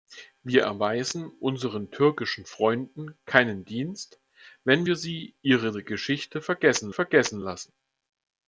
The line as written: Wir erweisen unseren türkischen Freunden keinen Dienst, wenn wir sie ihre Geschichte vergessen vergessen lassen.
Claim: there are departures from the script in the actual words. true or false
false